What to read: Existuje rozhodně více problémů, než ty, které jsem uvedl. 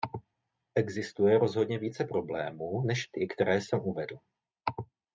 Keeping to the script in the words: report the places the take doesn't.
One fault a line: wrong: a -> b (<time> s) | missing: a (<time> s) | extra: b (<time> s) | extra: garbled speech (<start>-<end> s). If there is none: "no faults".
no faults